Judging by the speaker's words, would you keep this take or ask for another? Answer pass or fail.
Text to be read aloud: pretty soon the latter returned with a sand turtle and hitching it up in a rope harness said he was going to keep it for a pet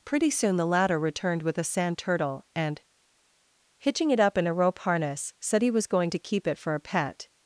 pass